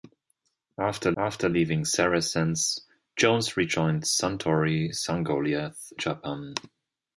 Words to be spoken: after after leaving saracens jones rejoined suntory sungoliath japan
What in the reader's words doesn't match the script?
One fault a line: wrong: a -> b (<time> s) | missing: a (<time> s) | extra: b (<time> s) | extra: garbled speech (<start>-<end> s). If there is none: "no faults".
no faults